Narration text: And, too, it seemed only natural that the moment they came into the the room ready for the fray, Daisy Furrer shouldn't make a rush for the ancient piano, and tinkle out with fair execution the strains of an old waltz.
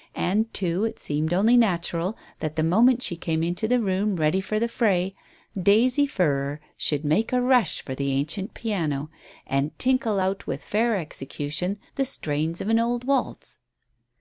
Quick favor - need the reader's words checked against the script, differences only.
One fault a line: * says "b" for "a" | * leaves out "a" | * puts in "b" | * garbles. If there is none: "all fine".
* says "she" for "they"
* leaves out "the"
* says "should" for "shouldn't"